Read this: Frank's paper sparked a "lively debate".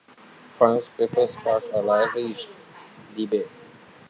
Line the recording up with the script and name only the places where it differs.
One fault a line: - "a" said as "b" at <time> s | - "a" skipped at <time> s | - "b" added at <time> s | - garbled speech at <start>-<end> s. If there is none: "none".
none